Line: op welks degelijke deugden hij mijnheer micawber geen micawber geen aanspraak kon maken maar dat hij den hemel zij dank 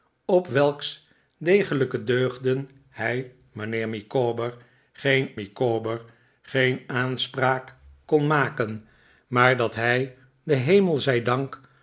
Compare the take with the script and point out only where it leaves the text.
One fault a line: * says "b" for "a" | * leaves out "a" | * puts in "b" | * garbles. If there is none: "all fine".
all fine